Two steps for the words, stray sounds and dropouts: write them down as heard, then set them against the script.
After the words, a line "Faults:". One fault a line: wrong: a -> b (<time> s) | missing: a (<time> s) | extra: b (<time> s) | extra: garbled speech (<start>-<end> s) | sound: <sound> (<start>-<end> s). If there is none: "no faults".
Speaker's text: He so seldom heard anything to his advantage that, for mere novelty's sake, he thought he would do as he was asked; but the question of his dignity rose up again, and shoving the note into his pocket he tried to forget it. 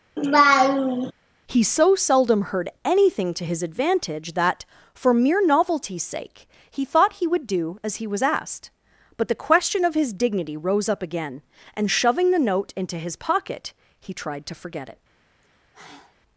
He so seldom heard anything to his advantage that, for mere novelty's sake, he thought he would do as he was asked; but the question of his dignity rose up again, and shoving the note into his pocket he tried to forget it.
Faults:
sound: laugh (0.2-1.1 s)
sound: sigh (15.4-16.2 s)